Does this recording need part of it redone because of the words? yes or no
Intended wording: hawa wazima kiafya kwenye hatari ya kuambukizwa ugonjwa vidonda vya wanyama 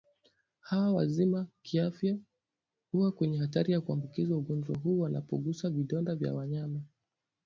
yes